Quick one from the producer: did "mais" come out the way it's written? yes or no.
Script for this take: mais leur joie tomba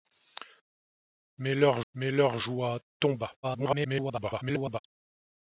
yes